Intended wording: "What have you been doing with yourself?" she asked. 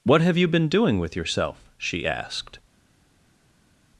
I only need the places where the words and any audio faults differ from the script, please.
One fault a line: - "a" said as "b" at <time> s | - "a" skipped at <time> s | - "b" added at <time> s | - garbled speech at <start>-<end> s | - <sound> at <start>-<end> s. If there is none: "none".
none